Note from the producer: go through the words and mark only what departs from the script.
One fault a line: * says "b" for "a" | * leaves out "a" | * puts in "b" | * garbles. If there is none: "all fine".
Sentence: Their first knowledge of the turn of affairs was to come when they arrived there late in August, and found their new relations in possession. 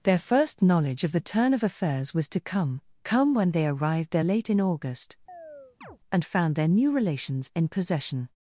* puts in "come"